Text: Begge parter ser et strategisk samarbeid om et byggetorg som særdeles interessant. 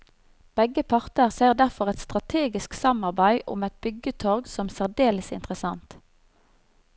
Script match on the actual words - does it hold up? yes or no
no